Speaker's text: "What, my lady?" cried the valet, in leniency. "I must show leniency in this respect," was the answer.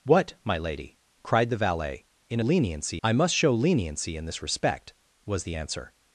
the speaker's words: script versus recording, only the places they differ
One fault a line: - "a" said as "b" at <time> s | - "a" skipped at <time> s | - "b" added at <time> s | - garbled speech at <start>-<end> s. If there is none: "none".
none